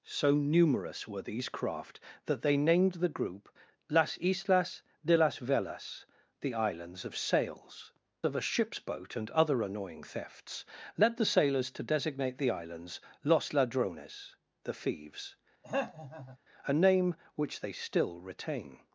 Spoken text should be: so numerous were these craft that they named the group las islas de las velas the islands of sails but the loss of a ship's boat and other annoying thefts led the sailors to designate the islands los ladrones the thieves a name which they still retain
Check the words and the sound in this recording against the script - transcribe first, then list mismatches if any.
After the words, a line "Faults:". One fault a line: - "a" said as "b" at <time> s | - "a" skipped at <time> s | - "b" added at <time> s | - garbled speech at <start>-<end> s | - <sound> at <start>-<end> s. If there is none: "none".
so numerous were these craft that they named the group las islas de las velas the islands of sails of a ship's boat and other annoying thefts led the sailors to designate the islands los ladrones the thieves a name which they still retain
Faults:
- "but the loss" skipped at 7.9 s
- throat clearing at 15.6-16.4 s